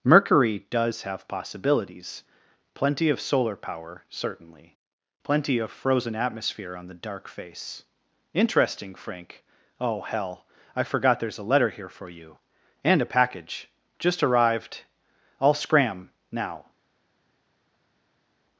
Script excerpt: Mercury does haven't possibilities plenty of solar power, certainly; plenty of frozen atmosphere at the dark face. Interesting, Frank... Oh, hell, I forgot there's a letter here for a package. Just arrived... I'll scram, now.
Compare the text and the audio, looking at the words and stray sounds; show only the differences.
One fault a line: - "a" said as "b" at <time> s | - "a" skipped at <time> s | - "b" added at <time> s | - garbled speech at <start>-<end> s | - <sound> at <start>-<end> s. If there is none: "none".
- "haven't" said as "have" at 1.0 s
- "at" said as "on" at 6.8 s
- "you And" added at 12.1 s